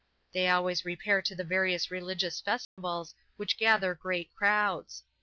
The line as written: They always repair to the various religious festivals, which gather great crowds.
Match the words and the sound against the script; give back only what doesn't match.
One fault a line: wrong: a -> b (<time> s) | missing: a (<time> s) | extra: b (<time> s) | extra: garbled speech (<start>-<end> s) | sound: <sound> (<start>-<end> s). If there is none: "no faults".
sound: dropout (2.6-2.8 s)